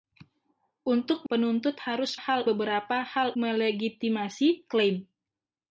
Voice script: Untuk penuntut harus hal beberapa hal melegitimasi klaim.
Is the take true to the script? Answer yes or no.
yes